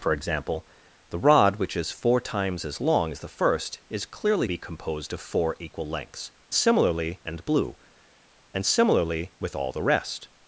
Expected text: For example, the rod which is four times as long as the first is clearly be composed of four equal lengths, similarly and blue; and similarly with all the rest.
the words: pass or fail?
pass